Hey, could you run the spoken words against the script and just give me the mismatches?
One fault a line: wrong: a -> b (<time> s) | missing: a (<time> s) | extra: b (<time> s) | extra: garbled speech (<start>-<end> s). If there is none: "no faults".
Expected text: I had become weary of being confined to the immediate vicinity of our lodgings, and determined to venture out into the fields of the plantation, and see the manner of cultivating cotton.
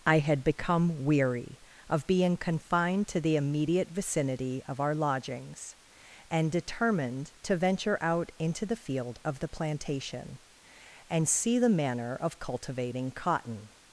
wrong: fields -> field (8.8 s)